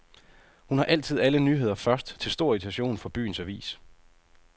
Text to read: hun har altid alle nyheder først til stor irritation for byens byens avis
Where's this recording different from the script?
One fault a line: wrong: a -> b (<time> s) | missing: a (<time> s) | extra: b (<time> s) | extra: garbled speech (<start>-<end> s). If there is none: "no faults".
missing: byens (3.4 s)